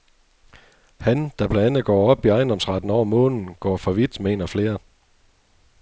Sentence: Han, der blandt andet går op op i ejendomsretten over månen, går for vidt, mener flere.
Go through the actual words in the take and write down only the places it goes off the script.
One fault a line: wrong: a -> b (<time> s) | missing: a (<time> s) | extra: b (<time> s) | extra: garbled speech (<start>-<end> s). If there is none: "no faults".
no faults